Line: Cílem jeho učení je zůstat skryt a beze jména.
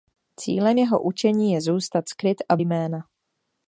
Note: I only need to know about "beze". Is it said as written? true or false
false